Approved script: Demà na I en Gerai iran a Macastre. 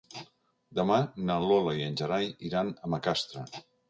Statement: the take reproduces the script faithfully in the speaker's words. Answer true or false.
false